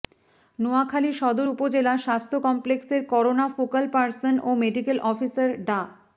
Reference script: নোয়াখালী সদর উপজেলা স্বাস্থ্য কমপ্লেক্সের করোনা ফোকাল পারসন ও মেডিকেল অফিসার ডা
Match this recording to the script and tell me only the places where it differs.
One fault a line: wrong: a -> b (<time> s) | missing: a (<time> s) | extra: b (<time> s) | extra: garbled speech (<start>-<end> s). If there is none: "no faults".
no faults